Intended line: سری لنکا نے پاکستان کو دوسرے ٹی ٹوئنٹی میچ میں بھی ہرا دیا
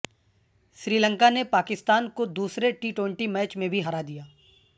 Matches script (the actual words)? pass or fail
pass